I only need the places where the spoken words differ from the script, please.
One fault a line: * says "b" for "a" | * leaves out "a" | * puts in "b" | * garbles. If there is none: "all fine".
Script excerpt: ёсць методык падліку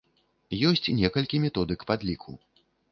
* puts in "некалькі"